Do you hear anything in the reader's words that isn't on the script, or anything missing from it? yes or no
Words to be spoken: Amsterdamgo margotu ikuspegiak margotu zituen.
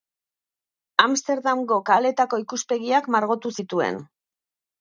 yes